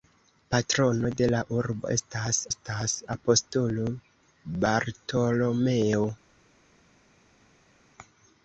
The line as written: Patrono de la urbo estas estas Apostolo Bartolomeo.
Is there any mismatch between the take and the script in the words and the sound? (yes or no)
no